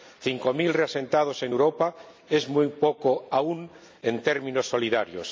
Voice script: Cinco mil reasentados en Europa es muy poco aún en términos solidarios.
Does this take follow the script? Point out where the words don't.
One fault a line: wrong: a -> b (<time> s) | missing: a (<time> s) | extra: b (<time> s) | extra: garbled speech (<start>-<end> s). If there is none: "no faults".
no faults